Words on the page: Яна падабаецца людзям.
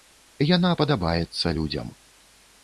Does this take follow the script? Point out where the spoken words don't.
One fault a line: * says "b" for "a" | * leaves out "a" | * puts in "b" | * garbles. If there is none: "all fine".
all fine